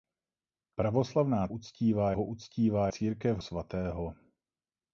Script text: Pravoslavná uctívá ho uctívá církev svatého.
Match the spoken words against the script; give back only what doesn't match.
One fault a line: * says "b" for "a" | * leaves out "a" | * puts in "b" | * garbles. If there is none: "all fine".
all fine